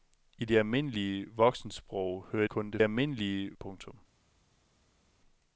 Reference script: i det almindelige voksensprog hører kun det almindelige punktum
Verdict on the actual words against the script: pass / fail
pass